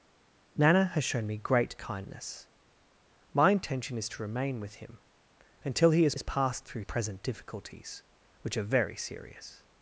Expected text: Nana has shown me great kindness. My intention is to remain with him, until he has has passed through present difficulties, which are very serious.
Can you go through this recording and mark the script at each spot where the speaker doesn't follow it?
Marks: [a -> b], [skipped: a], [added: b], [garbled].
Nana has shown me great kindness. My intention is to remain with him, until he has has passed through present difficulties, which are very serious.